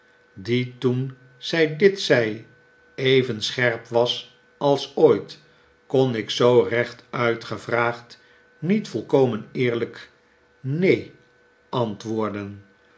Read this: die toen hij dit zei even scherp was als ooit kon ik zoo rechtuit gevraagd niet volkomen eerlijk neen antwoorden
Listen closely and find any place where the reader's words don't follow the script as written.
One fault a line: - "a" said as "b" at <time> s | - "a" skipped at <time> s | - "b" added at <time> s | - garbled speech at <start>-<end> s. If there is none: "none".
- "hij" said as "zij" at 1.4 s